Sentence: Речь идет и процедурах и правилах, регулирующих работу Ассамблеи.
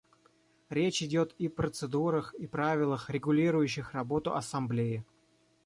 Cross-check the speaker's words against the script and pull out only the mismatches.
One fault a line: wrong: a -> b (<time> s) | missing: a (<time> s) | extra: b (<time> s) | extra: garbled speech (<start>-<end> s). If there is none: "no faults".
no faults